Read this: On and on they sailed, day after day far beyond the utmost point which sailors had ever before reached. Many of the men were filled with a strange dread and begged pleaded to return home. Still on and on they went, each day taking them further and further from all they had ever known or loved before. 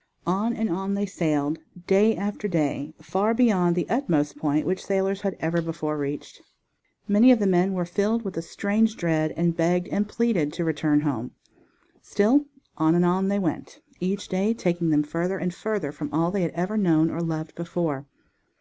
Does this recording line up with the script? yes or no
no